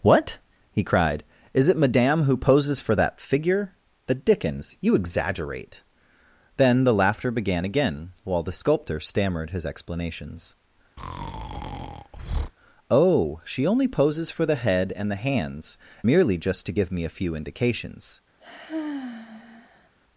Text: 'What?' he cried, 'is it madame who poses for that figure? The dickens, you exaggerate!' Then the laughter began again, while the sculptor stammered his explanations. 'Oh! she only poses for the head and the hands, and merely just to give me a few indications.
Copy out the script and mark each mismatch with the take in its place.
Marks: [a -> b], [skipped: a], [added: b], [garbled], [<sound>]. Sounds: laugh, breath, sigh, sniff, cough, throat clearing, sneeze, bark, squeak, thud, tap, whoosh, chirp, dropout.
'What?' he cried, 'is it madame who poses for that figure? The dickens, you exaggerate!' Then the laughter began again, while the sculptor stammered his explanations. [breath] 'Oh! she only poses for the head and the hands, [skipped: and] merely just to give me a few indications. [sigh]